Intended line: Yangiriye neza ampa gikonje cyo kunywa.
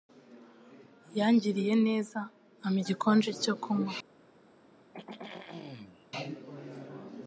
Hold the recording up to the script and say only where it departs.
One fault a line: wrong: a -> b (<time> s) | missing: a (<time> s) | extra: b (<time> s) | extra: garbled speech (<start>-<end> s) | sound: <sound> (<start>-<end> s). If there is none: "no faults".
sound: throat clearing (4.9-6.1 s)